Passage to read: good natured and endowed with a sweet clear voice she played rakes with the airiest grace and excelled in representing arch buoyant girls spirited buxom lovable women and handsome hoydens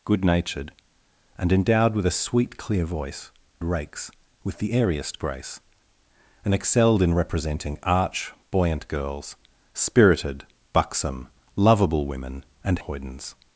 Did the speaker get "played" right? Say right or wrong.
wrong